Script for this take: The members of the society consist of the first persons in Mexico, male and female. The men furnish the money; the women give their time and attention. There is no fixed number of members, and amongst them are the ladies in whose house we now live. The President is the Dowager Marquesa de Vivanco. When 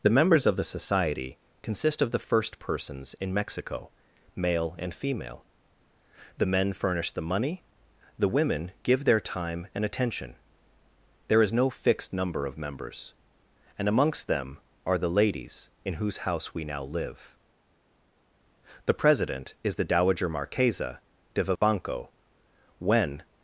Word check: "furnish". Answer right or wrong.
right